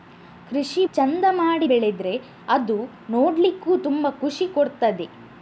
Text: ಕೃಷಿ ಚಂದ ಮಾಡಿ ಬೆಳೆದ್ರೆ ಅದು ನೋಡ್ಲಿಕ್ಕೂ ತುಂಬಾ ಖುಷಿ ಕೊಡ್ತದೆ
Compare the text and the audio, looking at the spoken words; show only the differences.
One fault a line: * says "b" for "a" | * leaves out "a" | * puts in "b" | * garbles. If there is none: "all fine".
all fine